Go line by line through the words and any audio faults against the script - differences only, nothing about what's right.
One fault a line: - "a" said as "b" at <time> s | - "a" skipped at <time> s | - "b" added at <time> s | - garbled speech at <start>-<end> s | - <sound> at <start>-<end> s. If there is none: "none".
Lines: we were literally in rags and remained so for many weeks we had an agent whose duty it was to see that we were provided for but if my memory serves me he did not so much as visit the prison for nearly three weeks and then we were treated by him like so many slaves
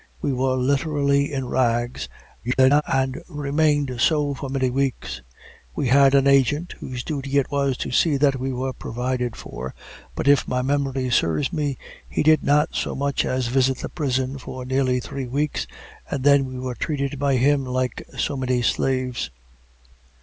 - garbled speech at 2.4-2.8 s